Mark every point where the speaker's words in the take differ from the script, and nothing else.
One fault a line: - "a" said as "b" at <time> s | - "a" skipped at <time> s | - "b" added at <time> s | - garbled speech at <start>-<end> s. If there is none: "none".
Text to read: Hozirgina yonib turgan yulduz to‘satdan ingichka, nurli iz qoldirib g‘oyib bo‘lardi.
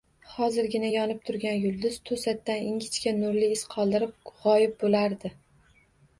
none